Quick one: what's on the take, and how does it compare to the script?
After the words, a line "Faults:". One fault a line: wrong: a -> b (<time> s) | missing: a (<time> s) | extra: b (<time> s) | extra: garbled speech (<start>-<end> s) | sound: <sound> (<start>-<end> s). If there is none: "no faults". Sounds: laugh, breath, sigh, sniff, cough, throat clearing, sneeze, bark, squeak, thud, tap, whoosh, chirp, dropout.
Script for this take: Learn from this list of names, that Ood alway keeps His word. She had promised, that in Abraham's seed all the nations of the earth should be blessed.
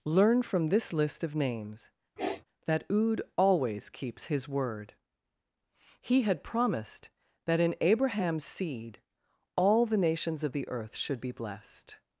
Learn from this list of names, that Ood always keeps His word. He had promised, that in Abraham's seed all the nations of the earth should be blessed.
Faults:
sound: sniff (2.2-2.4 s)
wrong: alway -> always (3.4 s)
wrong: She -> He (6.0 s)